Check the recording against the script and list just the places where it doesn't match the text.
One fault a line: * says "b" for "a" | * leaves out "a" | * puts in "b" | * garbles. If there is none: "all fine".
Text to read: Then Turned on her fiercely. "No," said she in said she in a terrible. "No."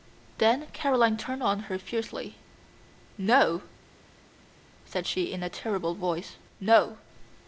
* puts in "Caroline"
* leaves out "said she in"
* puts in "voice"